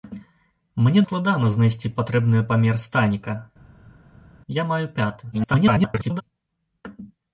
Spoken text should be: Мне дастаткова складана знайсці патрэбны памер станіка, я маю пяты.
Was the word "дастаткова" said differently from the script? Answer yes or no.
yes